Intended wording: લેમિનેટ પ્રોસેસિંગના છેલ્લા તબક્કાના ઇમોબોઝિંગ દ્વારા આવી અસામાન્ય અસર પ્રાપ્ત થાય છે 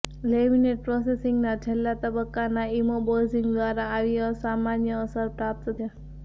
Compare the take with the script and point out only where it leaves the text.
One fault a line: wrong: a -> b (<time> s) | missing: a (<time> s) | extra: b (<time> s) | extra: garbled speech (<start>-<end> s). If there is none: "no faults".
missing: થાય (5.8 s)